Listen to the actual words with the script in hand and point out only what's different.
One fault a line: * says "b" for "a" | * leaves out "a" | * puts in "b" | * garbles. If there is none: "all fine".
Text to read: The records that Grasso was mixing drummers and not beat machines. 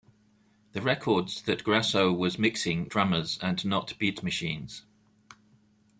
all fine